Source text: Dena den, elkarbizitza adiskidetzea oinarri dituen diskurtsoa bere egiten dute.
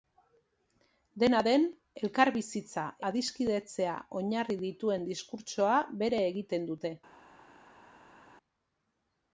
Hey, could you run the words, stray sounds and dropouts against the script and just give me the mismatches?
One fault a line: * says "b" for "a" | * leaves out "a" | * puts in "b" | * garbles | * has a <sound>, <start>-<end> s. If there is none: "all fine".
all fine